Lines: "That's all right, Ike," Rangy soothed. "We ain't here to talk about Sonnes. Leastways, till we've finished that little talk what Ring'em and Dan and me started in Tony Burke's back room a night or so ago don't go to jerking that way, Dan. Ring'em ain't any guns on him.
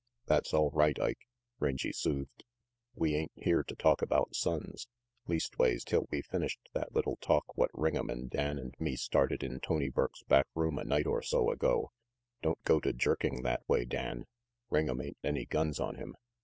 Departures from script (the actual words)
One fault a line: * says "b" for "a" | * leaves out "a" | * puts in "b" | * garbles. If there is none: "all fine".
all fine